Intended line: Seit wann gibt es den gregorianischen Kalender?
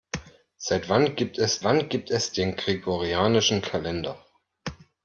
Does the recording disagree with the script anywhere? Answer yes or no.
yes